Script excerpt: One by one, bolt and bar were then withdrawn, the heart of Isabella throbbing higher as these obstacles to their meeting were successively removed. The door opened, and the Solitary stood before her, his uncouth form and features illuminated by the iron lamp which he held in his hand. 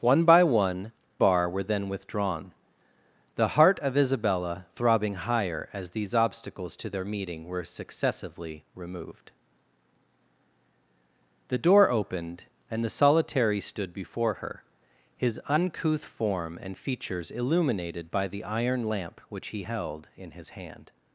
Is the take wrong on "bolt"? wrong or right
wrong